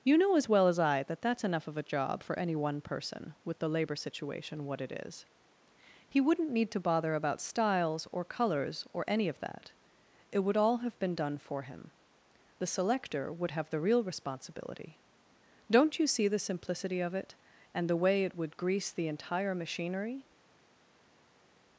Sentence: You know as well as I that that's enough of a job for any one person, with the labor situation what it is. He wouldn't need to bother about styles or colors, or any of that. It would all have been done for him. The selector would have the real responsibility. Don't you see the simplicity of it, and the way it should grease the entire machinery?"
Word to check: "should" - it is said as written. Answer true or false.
false